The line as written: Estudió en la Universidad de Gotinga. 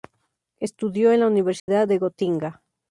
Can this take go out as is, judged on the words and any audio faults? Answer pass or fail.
fail